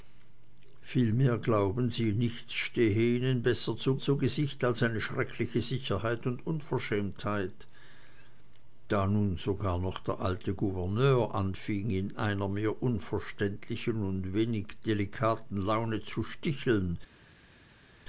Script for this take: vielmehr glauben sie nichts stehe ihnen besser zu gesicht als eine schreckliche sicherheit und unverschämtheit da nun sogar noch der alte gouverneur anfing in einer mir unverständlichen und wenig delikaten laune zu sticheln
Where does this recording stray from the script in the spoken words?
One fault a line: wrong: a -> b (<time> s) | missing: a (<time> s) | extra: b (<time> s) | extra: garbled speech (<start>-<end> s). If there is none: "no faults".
extra: zu (4.0 s)